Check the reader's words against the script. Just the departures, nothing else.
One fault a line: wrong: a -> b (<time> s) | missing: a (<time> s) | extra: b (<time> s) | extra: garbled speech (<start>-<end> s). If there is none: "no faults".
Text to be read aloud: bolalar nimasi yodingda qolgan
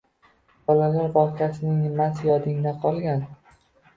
extra: bog‘chasining (1.2 s)